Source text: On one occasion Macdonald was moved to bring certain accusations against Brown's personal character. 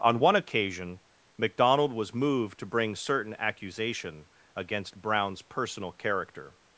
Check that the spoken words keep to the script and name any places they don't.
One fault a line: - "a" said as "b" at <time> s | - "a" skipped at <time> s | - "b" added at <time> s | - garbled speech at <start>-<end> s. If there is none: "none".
- "accusations" said as "accusation" at 3.4 s